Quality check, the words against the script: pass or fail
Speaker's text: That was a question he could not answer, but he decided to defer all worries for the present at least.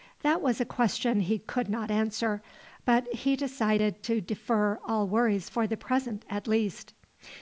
pass